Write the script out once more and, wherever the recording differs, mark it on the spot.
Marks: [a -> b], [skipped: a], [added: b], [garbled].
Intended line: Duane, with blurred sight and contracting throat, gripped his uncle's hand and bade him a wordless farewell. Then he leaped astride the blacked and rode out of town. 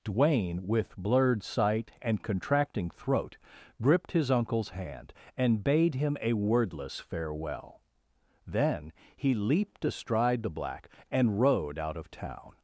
Duane, with blurred sight and contracting throat, gripped his uncle's hand and bade him a wordless farewell. Then he leaped astride the [blacked -> black] and rode out of town.